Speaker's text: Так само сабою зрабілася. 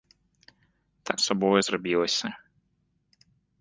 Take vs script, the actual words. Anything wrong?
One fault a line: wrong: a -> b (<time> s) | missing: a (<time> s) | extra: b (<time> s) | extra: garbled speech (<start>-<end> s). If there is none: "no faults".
missing: само (1.2 s)